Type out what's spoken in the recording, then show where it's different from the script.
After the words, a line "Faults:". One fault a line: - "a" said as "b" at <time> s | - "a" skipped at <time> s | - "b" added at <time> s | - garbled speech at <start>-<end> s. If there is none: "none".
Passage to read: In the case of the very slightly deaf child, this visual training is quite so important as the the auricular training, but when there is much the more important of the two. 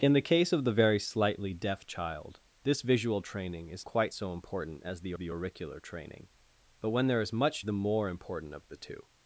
In the case of the very slightly deaf child, this visual training is quite so important as the the auricular training, but when there is much the more important of the two.
Faults:
none